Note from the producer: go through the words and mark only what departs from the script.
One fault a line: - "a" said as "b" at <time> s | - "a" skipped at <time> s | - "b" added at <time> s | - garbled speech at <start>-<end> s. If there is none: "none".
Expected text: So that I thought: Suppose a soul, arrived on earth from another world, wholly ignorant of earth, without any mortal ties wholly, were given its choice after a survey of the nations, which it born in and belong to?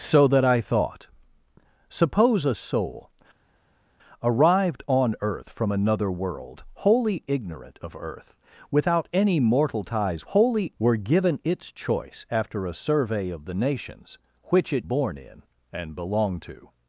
none